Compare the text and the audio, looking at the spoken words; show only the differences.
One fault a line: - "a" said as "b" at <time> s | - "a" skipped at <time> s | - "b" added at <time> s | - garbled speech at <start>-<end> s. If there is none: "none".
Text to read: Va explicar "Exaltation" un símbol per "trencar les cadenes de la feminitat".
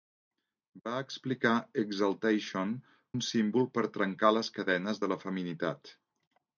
none